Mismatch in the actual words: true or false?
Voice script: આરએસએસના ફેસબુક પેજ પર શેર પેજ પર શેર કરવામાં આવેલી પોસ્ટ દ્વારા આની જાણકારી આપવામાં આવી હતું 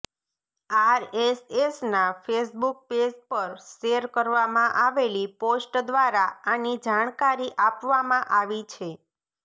true